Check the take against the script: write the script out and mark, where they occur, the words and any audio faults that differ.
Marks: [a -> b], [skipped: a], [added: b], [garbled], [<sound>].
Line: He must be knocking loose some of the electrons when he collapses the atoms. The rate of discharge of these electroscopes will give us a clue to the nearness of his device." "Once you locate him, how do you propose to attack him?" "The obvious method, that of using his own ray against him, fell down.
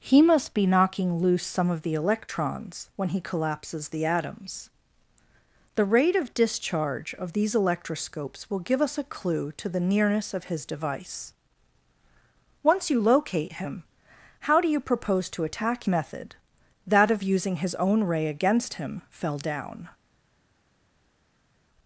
He must be knocking loose some of the electrons when he collapses the atoms. The rate of discharge of these electroscopes will give us a clue to the nearness of his device." "Once you locate him, how do you propose to attack [skipped: him?" "The obvious] method, that of using his own ray against him, fell down.